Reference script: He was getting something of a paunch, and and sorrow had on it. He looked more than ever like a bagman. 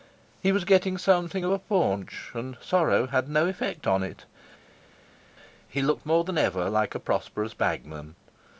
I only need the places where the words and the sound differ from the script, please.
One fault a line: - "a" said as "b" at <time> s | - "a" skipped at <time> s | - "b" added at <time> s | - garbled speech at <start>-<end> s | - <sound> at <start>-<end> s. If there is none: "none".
- "and" skipped at 2.6 s
- "no effect" added at 3.3 s
- "prosperous" added at 7.0 s